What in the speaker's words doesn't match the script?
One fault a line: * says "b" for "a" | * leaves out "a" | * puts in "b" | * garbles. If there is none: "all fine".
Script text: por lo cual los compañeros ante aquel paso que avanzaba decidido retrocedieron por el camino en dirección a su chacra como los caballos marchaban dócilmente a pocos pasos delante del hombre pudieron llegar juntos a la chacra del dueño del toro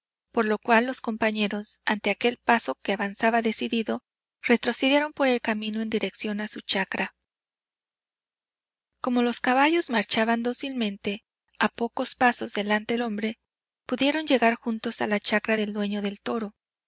* leaves out "del"